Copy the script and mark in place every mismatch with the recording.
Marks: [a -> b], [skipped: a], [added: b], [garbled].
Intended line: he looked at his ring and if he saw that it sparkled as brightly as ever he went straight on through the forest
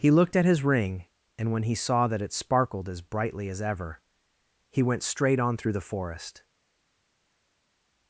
he looked at his ring and [if -> when] he saw that it sparkled as brightly as ever he went straight on through the forest